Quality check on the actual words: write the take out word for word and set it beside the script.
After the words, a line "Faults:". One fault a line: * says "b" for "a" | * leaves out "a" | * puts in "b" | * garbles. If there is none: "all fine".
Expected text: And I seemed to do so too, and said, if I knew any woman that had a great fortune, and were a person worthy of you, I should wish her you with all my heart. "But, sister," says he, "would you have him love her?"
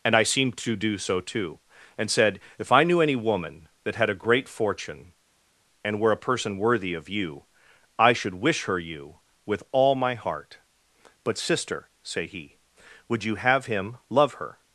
And I seemed to do so too, and said, if I knew any woman that had a great fortune, and were a person worthy of you, I should wish her you with all my heart. "But, sister," say he, "would you have him love her?"
Faults:
* says "say" for "says"